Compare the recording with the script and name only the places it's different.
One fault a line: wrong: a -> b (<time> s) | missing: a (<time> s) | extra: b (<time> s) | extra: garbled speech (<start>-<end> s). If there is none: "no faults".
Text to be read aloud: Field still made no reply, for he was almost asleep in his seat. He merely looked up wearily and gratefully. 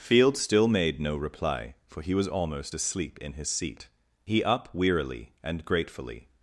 missing: merely looked (4.4 s)